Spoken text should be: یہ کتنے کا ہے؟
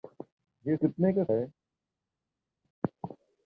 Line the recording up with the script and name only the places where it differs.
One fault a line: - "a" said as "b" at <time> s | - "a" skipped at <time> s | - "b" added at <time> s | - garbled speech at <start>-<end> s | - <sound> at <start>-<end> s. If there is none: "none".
none